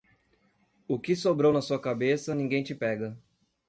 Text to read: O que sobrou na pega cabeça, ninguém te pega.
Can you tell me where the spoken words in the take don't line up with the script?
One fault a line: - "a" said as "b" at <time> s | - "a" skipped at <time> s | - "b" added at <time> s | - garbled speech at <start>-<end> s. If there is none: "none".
- "pega" said as "sua" at 1.6 s